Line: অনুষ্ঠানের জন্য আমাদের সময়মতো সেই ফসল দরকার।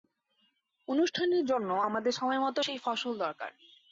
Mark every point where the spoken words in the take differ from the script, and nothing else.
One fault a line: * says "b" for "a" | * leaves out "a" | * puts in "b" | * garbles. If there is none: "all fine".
all fine